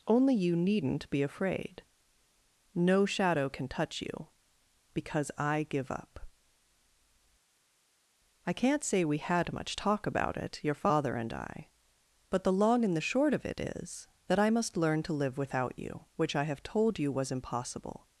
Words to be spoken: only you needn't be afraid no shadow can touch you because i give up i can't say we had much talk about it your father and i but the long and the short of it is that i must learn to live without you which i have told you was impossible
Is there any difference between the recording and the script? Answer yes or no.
no